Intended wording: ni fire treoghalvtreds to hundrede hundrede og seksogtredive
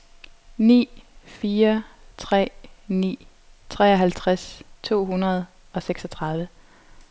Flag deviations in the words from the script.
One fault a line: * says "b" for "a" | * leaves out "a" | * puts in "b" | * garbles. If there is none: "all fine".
* puts in "tre ni"
* leaves out "hundrede"